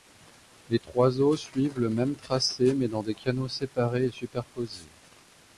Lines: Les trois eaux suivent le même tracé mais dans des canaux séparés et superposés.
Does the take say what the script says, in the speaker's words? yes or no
yes